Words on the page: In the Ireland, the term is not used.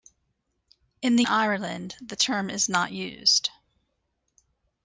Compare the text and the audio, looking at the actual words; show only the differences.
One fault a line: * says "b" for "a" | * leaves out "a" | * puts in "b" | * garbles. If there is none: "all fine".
all fine